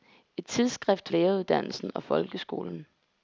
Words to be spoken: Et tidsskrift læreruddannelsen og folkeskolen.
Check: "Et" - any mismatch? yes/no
no